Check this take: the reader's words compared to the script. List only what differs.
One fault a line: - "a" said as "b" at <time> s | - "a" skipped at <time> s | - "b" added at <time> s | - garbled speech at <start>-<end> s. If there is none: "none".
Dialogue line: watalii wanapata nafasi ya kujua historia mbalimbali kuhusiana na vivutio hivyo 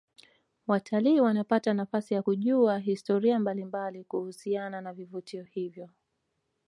none